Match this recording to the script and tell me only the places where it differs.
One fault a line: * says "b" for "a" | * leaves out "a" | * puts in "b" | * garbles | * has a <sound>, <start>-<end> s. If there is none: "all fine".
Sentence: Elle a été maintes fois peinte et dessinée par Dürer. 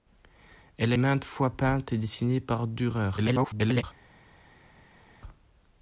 * leaves out "été"
* garbles